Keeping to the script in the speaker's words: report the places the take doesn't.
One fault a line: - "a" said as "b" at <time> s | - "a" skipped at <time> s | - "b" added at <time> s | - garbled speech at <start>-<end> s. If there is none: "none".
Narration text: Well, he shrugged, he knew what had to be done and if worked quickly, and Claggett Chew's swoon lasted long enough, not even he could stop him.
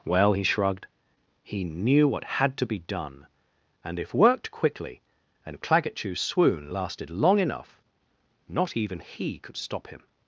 none